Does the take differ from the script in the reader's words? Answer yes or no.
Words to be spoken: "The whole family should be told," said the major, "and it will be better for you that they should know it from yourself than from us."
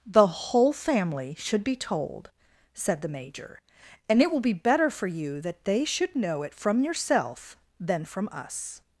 no